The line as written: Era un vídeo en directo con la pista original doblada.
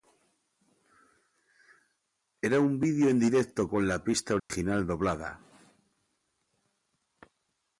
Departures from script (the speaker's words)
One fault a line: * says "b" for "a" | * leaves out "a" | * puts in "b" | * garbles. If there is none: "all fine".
all fine